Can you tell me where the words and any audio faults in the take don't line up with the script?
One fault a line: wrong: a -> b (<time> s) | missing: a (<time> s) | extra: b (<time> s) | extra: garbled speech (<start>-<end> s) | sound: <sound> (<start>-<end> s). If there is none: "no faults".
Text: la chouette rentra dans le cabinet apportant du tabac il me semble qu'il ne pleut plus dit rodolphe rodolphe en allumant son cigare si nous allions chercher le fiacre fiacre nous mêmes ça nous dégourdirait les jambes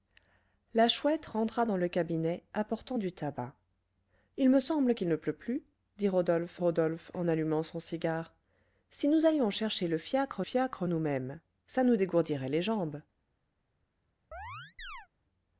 sound: chirp (14.3-15.1 s)